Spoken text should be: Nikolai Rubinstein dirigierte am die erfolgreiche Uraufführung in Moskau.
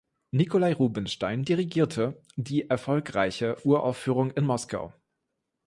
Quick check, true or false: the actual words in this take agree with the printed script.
false